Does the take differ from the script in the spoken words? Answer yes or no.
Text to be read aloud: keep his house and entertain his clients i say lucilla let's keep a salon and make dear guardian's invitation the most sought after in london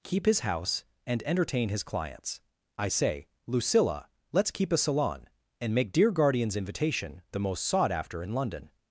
no